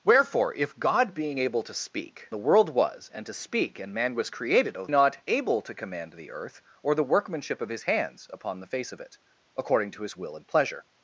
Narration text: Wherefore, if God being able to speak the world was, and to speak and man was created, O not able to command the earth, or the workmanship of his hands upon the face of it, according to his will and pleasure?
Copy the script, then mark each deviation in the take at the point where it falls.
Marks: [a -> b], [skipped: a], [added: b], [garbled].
Wherefore, if God being able to speak the world was, and to speak and man was created, O not able to command the earth, or the workmanship of his hands upon the face of it, according to his will and pleasure?